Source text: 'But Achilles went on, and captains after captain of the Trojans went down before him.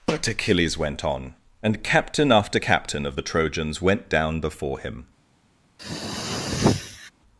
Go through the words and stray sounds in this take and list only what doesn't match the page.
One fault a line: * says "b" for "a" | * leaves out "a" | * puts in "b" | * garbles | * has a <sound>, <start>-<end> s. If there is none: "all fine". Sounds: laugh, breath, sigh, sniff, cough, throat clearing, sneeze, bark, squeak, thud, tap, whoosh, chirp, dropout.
* says "captain" for "captains"
* has a throat clearing, 5.8-7.1 s